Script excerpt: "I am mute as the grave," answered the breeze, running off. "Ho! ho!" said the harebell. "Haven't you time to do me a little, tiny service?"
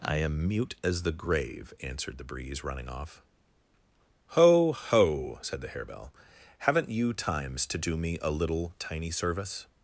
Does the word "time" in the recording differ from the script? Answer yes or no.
yes